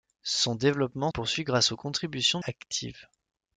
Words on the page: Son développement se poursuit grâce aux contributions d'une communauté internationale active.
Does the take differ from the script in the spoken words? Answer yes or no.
yes